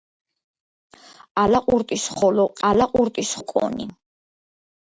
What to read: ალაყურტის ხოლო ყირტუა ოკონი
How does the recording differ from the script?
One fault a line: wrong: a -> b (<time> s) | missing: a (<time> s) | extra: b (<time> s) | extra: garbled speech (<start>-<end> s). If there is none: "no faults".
wrong: ყირტუა -> ალაყურტის (2.7 s)